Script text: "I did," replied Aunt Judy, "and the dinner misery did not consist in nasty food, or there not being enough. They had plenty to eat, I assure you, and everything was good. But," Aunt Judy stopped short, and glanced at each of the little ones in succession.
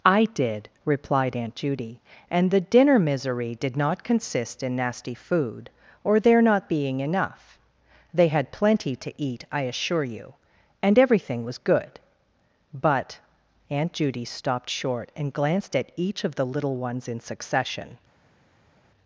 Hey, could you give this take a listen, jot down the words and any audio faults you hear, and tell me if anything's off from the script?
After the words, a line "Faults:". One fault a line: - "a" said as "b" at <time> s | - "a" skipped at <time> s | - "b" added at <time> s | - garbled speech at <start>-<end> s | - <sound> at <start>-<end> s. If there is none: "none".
"I did," replied Aunt Judy, "and the dinner misery did not consist in nasty food, or there not being enough. They had plenty to eat, I assure you, and everything was good. But," Aunt Judy stopped short, and glanced at each of the little ones in succession.
Faults:
none